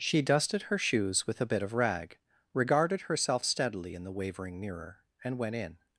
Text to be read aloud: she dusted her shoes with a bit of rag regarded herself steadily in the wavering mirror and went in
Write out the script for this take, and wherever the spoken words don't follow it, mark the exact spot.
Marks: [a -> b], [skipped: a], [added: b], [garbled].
she dusted her shoes with a bit of rag regarded herself steadily in the wavering mirror and went in